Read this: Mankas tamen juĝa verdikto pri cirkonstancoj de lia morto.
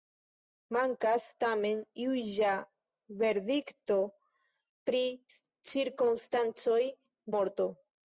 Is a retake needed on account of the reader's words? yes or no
yes